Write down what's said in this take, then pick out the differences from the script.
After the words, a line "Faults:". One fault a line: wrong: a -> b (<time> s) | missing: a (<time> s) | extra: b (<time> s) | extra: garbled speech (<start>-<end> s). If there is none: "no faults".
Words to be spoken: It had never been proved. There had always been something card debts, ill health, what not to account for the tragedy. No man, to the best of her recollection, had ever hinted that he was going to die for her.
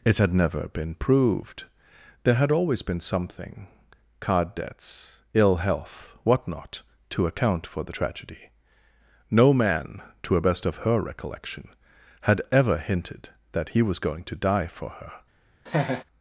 It had never been proved. There had always been something card debts, ill health, what not to account for the tragedy. No man, to a best of her recollection, had ever hinted that he was going to die for her.
Faults:
wrong: the -> a (10.4 s)